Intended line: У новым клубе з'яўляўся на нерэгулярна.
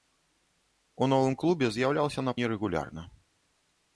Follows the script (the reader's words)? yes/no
yes